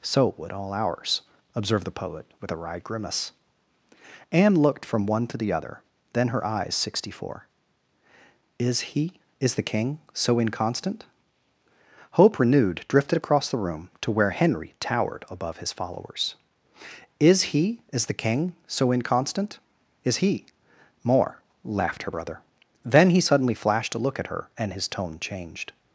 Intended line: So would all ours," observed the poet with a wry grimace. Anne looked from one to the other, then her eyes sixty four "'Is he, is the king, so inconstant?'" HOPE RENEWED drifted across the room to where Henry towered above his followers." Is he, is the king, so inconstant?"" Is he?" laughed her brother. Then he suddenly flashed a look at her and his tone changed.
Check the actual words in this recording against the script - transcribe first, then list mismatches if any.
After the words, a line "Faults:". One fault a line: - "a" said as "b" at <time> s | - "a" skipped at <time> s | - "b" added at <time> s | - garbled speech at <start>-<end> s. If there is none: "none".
So would all ours," observed the poet with a wry grimace. Anne looked from one to the other, then her eyes sixty four "'Is he, is the king, so inconstant?'" HOPE RENEWED drifted across the room to where Henry towered above his followers." Is he, is the king, so inconstant?"" Is he?" more laughed her brother. Then he suddenly flashed a look at her and his tone changed.
Faults:
- "more" added at 21.0 s